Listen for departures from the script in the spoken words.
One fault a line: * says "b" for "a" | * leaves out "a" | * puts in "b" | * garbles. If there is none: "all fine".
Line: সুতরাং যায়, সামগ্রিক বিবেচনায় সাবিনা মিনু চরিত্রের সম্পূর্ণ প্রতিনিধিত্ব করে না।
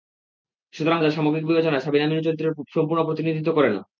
all fine